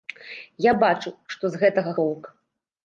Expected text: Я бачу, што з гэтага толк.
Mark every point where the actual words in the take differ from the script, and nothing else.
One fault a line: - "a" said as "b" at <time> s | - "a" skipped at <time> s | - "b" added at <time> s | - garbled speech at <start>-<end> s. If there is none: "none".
none